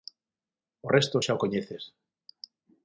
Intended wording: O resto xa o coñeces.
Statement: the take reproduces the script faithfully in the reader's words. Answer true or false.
true